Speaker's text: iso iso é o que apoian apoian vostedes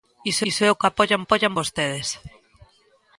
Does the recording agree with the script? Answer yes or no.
yes